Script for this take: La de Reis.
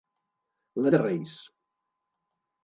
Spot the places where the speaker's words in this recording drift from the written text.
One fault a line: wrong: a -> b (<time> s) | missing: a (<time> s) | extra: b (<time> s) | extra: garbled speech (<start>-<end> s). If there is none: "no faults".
no faults